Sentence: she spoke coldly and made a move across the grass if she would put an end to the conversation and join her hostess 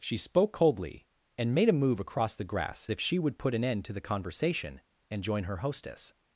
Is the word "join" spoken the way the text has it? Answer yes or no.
yes